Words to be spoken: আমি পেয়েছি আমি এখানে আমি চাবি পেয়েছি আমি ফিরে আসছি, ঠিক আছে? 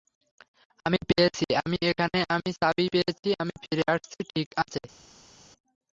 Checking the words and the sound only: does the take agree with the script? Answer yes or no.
yes